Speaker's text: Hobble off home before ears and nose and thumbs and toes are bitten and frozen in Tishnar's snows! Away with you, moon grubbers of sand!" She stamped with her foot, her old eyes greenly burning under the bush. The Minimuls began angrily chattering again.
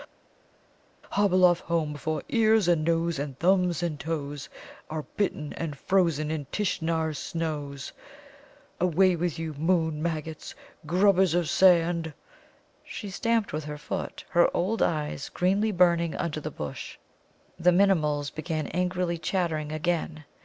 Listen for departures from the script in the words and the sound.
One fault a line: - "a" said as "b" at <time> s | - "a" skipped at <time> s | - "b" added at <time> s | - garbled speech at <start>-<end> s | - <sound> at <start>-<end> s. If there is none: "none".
- "maggots" added at 10.0 s